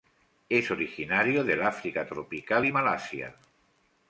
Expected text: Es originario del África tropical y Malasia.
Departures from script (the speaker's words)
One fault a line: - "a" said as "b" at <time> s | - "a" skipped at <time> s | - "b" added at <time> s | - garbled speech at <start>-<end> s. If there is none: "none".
none